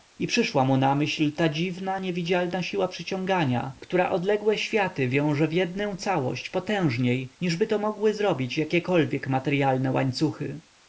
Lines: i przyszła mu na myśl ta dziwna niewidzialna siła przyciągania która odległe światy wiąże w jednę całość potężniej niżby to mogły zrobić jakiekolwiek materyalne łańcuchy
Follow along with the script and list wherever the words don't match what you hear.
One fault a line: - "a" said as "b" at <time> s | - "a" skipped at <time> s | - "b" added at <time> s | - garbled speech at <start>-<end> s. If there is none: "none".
none